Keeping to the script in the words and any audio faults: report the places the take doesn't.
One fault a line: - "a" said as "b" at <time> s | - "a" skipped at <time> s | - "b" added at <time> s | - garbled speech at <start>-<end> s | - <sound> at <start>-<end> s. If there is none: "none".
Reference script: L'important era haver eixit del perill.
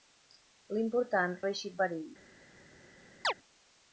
- "era" skipped at 1.4 s
- "del" skipped at 1.8 s
- chirp at 3.2-3.3 s